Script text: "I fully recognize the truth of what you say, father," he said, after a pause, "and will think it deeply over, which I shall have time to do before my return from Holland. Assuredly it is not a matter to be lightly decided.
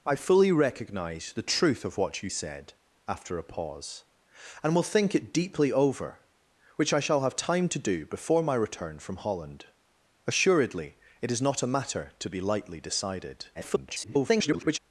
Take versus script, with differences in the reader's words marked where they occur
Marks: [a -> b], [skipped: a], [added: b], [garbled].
"I fully recognize the truth of what you [skipped: say, father," he] said, after a pause, "and will think it deeply over, which I shall have time to do before my return from Holland. Assuredly it is not a matter to be lightly decided. [garbled]